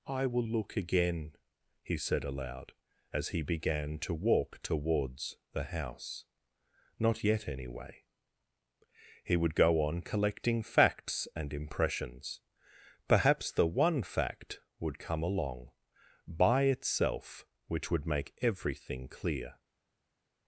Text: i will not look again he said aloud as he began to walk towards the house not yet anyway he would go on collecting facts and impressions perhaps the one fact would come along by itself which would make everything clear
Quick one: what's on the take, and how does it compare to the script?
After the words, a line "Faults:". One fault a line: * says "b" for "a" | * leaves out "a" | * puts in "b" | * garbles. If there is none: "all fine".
i will look again he said aloud as he began to walk towards the house not yet anyway he would go on collecting facts and impressions perhaps the one fact would come along by itself which would make everything clear
Faults:
* leaves out "not"